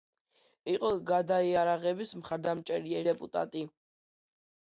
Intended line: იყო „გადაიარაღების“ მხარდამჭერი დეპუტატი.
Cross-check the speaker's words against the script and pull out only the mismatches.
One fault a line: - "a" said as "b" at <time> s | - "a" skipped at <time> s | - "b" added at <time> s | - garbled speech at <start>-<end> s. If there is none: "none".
none